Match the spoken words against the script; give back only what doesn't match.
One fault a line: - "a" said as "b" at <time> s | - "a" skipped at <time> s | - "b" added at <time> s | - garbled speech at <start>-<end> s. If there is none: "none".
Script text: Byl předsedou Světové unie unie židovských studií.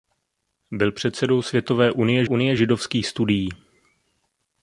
none